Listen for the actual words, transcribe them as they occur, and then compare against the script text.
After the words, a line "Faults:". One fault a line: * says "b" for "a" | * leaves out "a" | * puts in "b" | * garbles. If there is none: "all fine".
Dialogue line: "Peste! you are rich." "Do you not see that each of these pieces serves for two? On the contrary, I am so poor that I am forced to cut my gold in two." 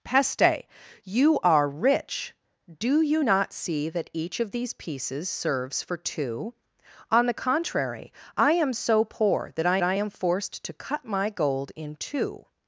"Peste! you are rich." "Do you not see that each of these pieces serves for two? On the contrary, I am so poor that I I am forced to cut my gold in two."
Faults:
* puts in "I"